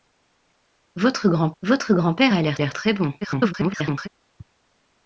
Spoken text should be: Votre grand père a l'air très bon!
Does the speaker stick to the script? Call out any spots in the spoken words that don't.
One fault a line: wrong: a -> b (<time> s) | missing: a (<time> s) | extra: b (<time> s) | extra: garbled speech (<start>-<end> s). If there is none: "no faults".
extra: votre grand (1.6 s)
extra: l'air (2.6 s)
extra: garbled speech (3.2-4.1 s)